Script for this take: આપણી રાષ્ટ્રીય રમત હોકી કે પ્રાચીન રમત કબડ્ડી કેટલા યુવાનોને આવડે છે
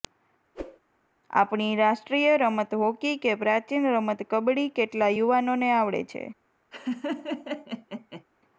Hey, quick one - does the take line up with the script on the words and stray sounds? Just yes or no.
no